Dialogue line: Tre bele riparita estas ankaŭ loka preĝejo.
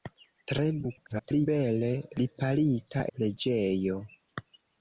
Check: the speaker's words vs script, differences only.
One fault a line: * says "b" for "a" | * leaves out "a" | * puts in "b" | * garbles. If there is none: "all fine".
* garbles
* leaves out "estas ankaŭ loka"